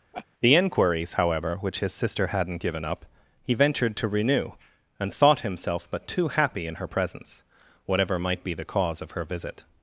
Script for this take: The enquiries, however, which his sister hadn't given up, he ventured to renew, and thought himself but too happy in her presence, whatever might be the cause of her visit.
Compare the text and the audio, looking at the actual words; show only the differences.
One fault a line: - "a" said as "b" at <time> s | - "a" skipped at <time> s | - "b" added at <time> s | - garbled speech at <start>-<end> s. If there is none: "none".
none